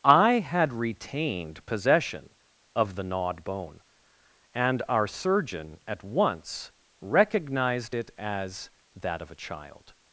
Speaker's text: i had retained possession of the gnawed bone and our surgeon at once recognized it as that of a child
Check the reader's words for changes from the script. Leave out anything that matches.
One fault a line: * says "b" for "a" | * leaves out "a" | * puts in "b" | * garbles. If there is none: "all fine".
all fine